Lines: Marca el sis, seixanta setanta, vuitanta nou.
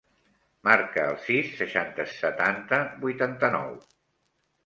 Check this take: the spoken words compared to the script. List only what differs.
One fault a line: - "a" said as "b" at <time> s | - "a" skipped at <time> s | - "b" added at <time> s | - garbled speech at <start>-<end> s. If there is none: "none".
none